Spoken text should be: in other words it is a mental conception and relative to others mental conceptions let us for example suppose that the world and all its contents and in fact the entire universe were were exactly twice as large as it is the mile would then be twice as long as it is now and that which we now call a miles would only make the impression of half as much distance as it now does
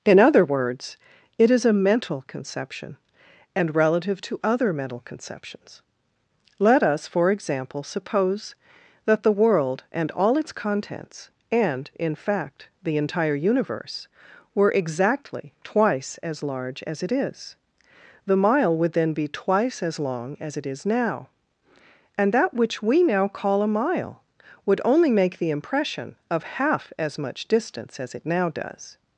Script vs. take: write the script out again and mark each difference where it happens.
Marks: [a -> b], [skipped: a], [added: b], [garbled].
in other words it is a mental conception and relative to [others -> other] mental conceptions let us for example suppose that the world and all its contents and in fact the entire universe were [skipped: were] exactly twice as large as it is the mile would then be twice as long as it is now and that which we now call a [miles -> mile] would only make the impression of half as much distance as it now does